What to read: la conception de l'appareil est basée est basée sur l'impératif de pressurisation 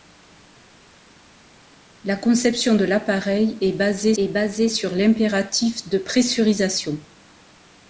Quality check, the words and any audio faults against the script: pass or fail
pass